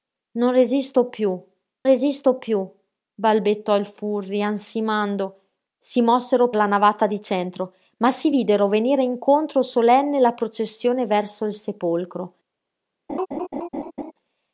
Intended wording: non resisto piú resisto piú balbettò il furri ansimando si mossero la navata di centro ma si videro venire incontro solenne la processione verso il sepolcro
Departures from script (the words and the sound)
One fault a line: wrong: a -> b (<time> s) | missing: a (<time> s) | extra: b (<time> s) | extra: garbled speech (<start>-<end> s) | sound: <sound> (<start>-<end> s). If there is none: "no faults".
sound: laugh (13.1-14.1 s)